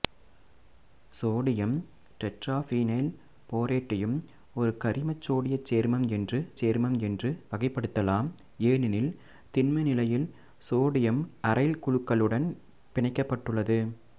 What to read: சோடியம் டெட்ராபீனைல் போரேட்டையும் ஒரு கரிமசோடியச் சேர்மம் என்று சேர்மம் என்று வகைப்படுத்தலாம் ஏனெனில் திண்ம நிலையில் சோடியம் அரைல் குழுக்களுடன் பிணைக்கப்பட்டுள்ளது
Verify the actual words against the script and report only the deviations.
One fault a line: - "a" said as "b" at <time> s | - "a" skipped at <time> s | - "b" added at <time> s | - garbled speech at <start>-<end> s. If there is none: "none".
none